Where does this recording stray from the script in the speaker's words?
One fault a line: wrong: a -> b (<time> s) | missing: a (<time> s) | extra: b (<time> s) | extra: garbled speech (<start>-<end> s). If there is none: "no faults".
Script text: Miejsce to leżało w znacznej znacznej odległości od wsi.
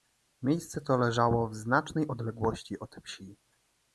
missing: znacznej (2.1 s)